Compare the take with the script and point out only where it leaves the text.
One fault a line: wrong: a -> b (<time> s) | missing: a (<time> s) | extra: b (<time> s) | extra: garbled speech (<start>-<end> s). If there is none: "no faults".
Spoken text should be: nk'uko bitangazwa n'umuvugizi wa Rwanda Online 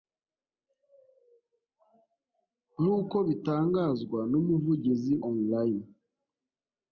missing: wa Rwanda (5.1 s)